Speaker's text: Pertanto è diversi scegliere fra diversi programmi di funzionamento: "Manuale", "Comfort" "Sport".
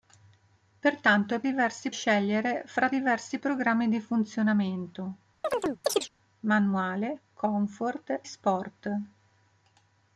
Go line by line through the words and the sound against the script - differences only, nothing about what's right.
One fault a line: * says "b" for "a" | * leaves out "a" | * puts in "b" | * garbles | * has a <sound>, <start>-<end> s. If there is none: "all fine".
* has a chirp, 5.4-6.1 s